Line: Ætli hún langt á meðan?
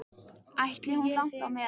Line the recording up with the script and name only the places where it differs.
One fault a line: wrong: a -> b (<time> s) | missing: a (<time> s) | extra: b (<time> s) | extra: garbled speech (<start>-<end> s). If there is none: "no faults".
no faults